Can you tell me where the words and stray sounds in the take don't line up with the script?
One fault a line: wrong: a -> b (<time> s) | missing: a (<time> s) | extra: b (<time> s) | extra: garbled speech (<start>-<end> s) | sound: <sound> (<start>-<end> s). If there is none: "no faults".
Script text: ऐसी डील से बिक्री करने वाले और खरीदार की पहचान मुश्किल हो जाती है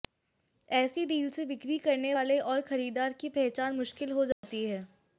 sound: dropout (4.3-4.4 s)